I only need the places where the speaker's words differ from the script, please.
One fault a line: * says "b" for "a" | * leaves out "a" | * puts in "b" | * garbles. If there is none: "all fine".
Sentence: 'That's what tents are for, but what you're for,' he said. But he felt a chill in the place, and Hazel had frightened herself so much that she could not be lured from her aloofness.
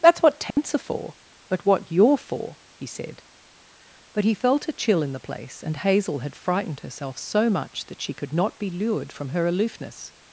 all fine